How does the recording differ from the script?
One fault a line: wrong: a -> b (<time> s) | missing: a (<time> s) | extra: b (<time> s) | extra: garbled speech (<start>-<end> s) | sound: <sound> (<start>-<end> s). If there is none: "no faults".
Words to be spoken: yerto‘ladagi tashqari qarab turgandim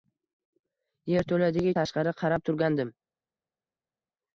no faults